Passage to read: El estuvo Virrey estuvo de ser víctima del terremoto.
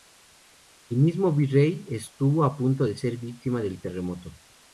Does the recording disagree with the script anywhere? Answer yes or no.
yes